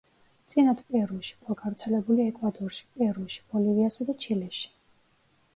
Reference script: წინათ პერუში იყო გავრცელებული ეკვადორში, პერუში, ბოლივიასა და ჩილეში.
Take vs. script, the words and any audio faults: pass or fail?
pass